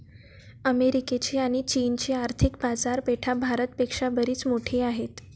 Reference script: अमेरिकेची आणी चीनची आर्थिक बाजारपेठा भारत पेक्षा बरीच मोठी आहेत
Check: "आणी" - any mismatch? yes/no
no